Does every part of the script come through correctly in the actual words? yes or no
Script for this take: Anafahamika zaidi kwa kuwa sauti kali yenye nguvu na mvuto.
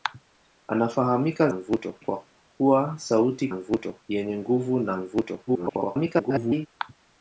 no